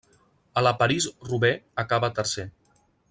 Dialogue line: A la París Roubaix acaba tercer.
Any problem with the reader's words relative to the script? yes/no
no